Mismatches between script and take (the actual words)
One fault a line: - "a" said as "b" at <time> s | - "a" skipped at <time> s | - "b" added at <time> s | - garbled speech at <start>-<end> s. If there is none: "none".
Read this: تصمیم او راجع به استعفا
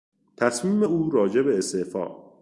none